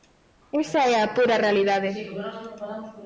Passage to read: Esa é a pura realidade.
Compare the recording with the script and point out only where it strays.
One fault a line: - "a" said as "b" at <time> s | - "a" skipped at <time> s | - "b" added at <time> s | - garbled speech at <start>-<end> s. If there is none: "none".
none